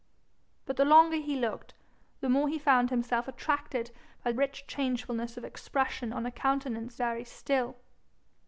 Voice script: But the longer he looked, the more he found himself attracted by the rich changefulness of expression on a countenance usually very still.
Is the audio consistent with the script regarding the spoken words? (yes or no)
no